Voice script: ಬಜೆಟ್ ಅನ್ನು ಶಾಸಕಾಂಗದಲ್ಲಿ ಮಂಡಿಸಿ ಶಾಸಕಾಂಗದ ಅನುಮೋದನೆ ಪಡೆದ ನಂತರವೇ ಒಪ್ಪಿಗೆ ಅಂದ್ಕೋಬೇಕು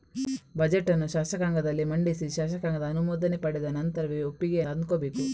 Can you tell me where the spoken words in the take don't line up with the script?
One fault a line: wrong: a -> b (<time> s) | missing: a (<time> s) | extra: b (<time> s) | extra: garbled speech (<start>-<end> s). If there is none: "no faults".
no faults